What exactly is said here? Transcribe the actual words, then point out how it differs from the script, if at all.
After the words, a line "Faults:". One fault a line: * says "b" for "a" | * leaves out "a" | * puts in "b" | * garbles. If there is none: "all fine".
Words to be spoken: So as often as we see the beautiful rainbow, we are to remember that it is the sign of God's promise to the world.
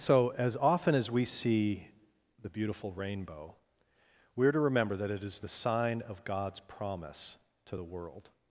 So as often as we see the beautiful rainbow, we are to remember that it is the sign of God's promise to the world.
Faults:
all fine